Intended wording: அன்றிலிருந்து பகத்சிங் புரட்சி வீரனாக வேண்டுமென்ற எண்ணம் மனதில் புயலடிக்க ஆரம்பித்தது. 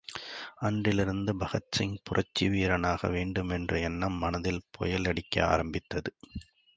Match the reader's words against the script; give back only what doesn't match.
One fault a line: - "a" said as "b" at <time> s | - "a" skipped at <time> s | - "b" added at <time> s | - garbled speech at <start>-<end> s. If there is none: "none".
none